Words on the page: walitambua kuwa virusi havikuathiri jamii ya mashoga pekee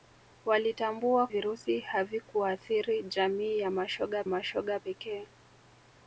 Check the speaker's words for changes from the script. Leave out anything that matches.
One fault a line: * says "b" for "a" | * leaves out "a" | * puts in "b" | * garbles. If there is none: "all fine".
* leaves out "kuwa"
* puts in "mashoga"